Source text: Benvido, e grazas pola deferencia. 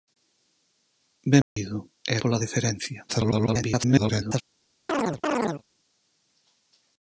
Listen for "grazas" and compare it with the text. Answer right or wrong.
wrong